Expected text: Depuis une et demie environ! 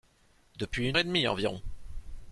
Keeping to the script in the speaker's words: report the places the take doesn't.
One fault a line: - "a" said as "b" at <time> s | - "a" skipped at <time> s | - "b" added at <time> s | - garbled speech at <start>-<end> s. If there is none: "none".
none